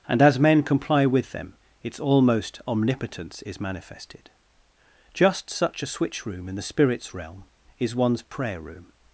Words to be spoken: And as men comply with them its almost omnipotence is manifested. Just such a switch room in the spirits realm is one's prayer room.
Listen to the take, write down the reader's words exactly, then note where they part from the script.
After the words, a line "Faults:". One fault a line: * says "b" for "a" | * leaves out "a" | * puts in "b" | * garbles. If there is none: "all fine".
And as men comply with them its almost omnipotence is manifested. Just such a switch room in the spirits realm is one's prayer room.
Faults:
all fine